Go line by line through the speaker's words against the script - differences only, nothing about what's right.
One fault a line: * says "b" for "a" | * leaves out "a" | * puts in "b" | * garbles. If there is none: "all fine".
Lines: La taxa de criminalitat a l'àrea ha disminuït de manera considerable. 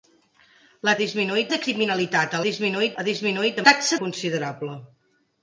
* says "disminuït" for "taxa"
* says "disminuït" for "l'àrea"
* says "taxa" for "manera"